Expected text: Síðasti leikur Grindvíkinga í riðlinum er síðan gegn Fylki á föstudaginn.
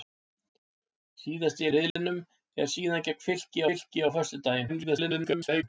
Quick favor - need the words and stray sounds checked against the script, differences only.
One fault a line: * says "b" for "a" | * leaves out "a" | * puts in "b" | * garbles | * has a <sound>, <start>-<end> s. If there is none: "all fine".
* leaves out "leikur Grindvíkinga"
* has a dropout, 1.9-2.0 s
* puts in "Fylki"
* garbles